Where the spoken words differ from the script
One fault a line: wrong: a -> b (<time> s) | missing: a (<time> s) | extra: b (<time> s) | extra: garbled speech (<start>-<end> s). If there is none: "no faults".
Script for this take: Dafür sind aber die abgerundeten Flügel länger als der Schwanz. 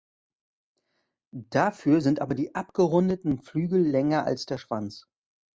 no faults